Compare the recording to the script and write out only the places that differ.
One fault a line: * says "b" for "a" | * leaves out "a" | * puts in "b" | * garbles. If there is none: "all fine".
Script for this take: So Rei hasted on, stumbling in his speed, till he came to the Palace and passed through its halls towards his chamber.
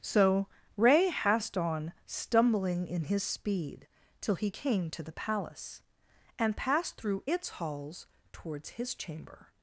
* says "hast" for "hasted"